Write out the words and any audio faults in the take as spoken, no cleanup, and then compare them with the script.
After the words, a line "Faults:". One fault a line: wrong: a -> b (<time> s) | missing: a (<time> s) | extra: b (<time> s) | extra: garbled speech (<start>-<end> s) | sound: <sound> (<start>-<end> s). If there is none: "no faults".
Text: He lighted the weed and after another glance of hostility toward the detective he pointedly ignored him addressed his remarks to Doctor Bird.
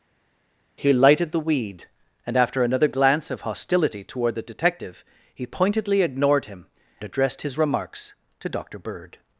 He lighted the weed and after another glance of hostility toward the detective he pointedly ignored him addressed his remarks to Doctor Bird.
Faults:
no faults